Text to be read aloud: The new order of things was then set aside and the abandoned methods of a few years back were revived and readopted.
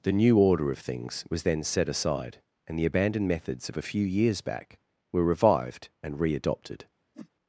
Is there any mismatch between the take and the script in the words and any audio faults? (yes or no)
yes